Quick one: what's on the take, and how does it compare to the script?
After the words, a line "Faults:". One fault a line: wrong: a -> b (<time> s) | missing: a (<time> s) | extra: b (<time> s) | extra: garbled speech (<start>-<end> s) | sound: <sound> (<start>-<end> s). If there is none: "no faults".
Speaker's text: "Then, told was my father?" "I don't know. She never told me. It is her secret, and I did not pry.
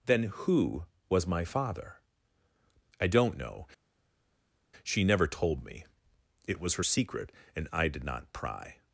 "Then, who was my father?" "I don't know. She never told me. It was her secret, and I did not pry.
Faults:
wrong: told -> who (0.2 s)
wrong: is -> was (6.6 s)